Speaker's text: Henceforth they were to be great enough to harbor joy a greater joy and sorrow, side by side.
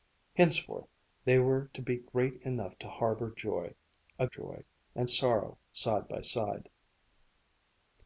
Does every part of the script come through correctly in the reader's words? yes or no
no